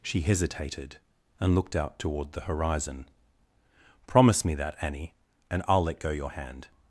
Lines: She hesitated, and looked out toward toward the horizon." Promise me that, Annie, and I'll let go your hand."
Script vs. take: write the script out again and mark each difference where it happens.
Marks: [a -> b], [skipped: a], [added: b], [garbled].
She hesitated, and looked out toward [skipped: toward] the horizon." Promise me that, Annie, and I'll let go your hand."